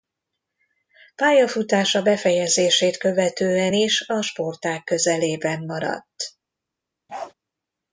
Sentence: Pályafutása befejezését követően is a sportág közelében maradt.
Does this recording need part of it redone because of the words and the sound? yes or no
yes